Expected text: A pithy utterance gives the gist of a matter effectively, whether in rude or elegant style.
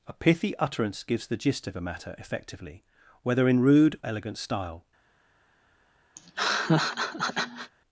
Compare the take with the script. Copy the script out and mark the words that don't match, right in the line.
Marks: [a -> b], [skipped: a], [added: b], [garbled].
A pithy utterance gives the gist of a matter effectively, whether in rude [skipped: or] elegant style.